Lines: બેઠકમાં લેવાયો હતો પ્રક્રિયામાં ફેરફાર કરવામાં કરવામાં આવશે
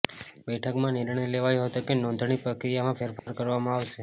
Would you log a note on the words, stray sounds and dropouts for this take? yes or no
yes